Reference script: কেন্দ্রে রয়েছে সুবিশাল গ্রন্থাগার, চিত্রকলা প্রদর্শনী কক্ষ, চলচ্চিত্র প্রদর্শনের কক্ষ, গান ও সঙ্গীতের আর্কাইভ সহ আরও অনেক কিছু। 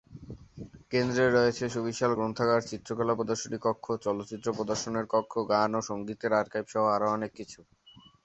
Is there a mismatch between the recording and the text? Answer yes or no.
no